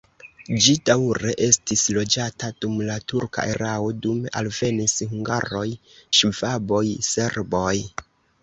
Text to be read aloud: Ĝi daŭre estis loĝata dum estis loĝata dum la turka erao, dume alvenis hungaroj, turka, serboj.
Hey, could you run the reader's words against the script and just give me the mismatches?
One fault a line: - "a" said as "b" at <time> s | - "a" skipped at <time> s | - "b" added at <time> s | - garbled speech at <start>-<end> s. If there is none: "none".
- "estis loĝata dum" skipped at 2.8 s
- "turka" said as "ŝvaboj" at 6.2 s